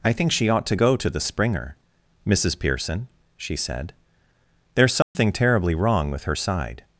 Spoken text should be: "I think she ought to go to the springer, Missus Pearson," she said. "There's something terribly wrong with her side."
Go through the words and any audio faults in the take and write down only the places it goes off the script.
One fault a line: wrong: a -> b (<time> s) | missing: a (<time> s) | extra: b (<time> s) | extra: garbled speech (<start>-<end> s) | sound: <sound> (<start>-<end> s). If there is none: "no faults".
sound: dropout (5.0-5.1 s)